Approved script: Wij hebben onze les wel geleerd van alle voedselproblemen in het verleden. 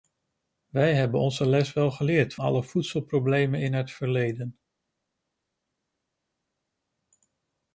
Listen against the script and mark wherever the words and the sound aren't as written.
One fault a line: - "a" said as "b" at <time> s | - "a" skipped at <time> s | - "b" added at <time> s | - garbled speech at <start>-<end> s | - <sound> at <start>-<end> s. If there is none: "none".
- "van" skipped at 2.4 s